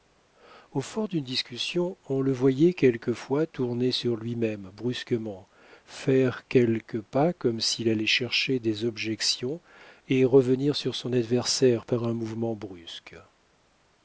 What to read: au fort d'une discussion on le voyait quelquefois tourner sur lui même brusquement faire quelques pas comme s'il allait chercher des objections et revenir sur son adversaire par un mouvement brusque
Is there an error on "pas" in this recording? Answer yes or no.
no